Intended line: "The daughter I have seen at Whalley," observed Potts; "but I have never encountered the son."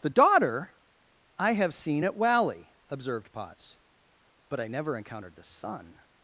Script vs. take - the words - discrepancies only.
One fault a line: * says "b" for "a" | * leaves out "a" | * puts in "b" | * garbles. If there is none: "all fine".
* leaves out "have"